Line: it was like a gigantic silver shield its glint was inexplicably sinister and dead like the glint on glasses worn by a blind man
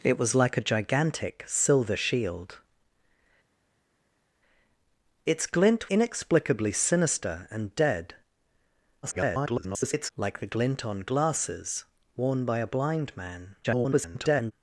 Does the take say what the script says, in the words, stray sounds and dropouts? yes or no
no